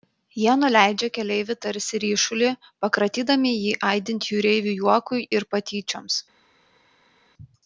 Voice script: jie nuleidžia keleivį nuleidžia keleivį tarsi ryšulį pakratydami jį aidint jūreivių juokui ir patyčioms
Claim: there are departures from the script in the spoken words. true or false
true